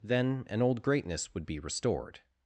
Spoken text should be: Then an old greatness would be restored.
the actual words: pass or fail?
pass